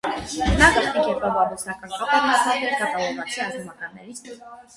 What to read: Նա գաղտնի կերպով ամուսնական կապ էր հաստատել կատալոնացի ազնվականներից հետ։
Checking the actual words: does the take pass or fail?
pass